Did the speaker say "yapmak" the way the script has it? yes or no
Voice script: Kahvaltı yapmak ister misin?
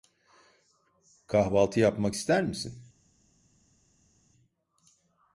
yes